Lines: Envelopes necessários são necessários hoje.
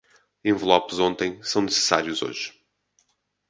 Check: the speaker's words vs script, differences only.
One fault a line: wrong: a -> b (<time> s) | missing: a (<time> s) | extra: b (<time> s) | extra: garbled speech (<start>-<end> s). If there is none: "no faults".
wrong: necessários -> ontem (1.0 s)